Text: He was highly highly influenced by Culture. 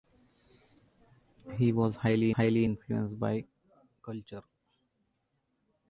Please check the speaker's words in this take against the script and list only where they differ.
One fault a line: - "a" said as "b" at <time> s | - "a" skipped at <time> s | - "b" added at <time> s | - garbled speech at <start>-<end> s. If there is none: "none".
none